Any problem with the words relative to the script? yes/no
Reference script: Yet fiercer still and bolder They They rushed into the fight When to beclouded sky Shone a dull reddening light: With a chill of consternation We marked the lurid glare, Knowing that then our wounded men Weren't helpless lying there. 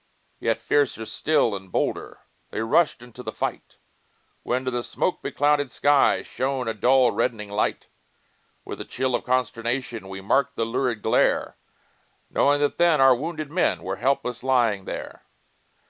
yes